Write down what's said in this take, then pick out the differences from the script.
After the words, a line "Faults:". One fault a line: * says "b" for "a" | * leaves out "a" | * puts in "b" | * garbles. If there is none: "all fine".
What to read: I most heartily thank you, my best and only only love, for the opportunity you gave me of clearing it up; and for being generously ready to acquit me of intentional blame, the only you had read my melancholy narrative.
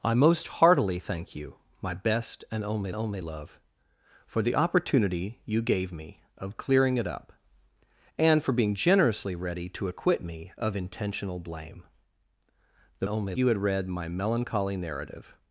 I most heartily thank you, my best and only only love, for the opportunity you gave me of clearing it up; and for being generously ready to acquit me of intentional blame, the only you had read my melancholy narrative.
Faults:
all fine